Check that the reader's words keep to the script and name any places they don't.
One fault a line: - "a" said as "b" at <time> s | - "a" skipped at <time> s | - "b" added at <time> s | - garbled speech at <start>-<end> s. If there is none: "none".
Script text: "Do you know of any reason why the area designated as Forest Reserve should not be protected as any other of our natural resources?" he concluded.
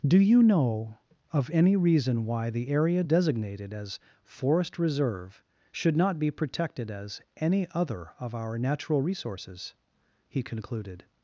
none